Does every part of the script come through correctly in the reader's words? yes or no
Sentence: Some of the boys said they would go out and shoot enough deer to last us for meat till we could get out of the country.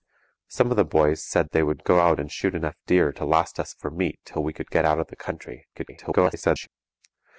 no